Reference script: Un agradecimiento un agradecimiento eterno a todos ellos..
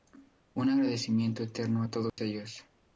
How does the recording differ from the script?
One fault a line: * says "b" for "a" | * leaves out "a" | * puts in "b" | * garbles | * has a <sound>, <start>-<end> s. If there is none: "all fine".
* leaves out "un agradecimiento"
* has a dropout, 2.1-2.2 s